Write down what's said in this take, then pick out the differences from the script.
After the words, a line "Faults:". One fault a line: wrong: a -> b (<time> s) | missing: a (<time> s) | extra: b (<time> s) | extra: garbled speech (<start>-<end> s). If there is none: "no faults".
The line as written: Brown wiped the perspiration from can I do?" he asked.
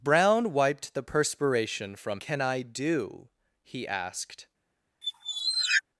Brown wiped the perspiration from can I do?" he asked.
Faults:
no faults